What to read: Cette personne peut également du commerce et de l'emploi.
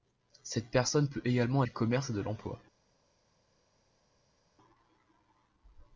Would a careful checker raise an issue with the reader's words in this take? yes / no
no